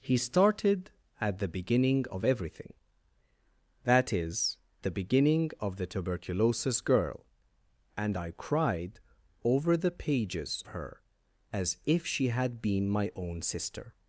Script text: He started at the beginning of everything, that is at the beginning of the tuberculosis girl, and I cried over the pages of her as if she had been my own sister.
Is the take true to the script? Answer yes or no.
no